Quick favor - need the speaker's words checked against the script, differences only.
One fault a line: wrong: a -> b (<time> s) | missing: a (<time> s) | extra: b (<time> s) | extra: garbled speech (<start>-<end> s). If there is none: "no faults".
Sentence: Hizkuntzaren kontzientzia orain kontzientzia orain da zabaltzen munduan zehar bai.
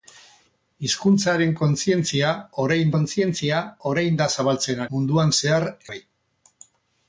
no faults